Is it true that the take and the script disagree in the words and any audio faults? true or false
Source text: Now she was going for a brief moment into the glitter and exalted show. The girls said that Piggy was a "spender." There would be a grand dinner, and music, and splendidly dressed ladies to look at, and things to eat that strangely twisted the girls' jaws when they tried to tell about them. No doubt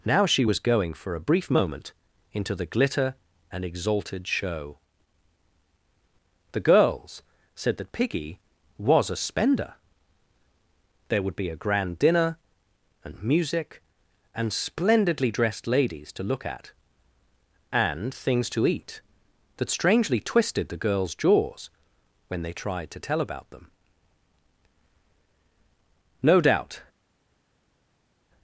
false